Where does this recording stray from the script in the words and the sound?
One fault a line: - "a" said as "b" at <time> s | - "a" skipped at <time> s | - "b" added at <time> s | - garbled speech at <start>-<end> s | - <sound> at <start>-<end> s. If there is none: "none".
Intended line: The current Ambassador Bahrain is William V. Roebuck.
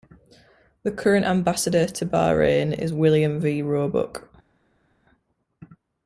- "to" added at 1.8 s